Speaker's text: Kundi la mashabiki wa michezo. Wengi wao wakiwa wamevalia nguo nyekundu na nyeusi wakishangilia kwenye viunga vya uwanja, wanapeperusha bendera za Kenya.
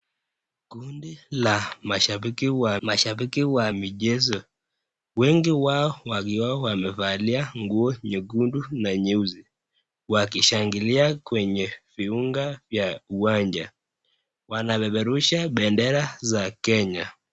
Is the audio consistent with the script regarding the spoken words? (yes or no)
no